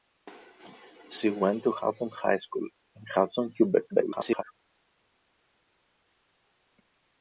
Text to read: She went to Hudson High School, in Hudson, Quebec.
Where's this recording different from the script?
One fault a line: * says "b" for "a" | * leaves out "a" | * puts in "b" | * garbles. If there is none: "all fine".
* garbles